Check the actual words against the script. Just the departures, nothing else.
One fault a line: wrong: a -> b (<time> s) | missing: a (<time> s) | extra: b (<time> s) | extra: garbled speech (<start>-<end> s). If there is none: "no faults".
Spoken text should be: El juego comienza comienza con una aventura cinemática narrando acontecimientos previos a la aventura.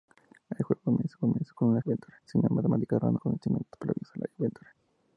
no faults